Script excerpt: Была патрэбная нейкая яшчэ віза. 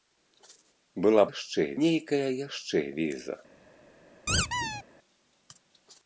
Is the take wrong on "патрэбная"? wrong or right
wrong